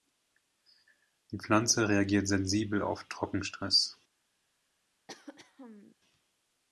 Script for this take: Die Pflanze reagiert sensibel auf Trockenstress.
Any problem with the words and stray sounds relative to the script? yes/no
yes